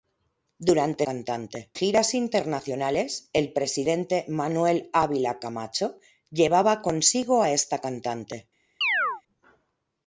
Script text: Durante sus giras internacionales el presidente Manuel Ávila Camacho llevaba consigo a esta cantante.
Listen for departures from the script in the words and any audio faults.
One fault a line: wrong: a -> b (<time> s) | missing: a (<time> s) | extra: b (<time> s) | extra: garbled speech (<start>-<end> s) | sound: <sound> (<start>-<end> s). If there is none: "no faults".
wrong: sus -> cantante (1.0 s)
sound: chirp (8.8-9.2 s)